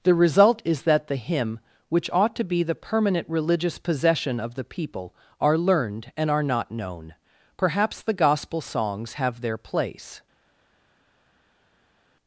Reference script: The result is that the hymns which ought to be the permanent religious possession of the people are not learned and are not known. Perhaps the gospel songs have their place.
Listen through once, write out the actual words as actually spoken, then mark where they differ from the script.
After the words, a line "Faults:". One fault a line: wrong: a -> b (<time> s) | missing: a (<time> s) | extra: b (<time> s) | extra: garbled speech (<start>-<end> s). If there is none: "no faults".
The result is that the hymn which ought to be the permanent religious possession of the people are learned and are not known. Perhaps the gospel songs have their place.
Faults:
wrong: hymns -> hymn (1.1 s)
missing: not (5.6 s)